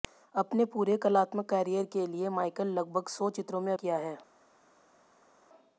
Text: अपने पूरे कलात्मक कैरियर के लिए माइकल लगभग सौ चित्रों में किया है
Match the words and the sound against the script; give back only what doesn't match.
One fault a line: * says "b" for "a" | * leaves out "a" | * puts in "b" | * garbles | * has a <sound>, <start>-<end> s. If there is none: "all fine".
all fine